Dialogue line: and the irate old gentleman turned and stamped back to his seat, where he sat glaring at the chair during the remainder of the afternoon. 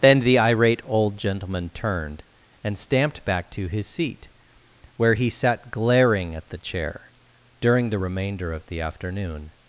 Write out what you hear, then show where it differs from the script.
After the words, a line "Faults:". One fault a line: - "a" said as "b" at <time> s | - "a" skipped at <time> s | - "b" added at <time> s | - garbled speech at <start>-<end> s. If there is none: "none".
then the irate old gentleman turned and stamped back to his seat, where he sat glaring at the chair during the remainder of the afternoon.
Faults:
- "and" said as "then" at 0.0 s